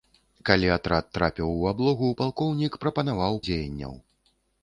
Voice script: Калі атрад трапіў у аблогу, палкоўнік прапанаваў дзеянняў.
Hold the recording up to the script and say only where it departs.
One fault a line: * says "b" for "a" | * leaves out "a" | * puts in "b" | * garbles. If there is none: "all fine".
all fine